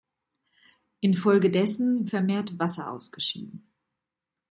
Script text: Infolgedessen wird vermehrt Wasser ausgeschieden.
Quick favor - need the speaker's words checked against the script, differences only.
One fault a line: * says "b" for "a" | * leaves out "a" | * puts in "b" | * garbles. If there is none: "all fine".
* leaves out "wird"